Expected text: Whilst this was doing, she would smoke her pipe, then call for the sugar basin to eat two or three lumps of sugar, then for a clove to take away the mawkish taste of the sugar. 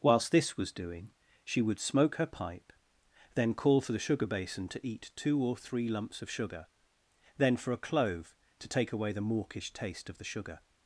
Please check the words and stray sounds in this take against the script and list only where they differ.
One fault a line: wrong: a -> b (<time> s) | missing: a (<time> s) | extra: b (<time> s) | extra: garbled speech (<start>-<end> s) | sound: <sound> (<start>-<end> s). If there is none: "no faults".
no faults